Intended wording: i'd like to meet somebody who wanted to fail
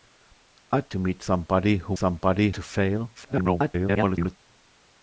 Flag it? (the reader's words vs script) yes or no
yes